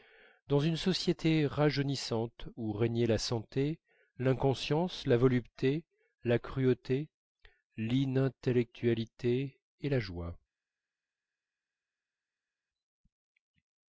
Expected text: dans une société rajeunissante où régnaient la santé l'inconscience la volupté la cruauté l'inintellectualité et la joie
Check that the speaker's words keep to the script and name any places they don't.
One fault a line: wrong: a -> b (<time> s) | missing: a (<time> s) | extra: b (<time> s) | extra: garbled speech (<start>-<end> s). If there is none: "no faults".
no faults